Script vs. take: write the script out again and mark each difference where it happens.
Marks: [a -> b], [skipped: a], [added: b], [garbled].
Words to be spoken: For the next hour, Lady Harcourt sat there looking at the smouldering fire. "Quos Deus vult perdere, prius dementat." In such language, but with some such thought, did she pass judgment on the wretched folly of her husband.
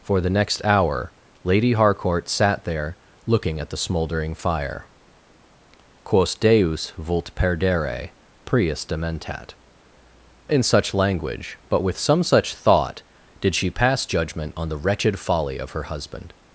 For the next hour, Lady Harcourt sat there looking at the smouldering fire. "Quos Deus vult perdere, prius dementat." In such language, but with some such thought, did she pass judgment on the wretched folly of her husband.